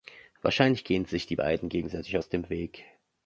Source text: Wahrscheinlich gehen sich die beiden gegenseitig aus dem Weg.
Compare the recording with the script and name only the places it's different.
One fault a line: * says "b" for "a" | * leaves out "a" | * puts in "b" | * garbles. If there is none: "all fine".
all fine